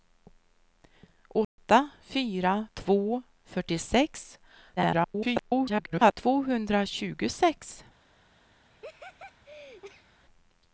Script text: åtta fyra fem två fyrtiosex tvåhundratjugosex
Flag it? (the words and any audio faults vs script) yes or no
yes